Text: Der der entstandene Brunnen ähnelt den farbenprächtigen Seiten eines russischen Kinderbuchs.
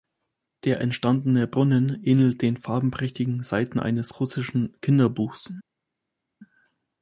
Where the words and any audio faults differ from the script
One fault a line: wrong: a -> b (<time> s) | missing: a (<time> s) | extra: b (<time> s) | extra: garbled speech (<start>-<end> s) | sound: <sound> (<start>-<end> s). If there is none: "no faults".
missing: der (0.8 s)